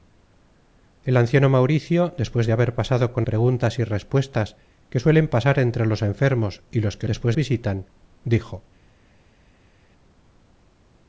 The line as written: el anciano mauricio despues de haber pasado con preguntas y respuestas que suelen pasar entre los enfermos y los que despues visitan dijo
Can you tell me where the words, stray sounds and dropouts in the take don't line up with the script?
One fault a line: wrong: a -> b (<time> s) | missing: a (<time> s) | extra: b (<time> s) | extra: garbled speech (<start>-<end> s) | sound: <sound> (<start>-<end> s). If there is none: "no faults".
no faults